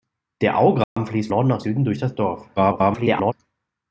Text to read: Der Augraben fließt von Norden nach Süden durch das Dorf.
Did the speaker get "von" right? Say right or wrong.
wrong